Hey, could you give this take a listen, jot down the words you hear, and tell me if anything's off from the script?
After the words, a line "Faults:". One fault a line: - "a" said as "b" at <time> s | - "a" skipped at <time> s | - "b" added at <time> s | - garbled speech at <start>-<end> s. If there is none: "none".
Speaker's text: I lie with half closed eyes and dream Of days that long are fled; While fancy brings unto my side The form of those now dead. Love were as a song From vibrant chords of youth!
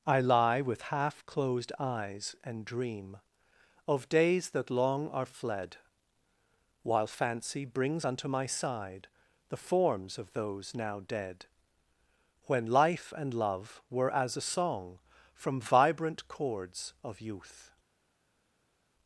I lie with half closed eyes and dream Of days that long are fled; While fancy brings unto my side The forms of those now dead. When life and love were as a song From vibrant chords of youth!
Faults:
- "form" said as "forms" at 9.6 s
- "When life and" added at 12.4 s